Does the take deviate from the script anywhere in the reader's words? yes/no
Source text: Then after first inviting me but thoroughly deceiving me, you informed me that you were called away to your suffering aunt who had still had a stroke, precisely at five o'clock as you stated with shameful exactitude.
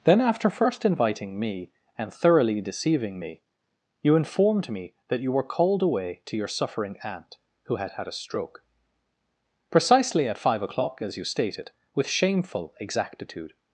yes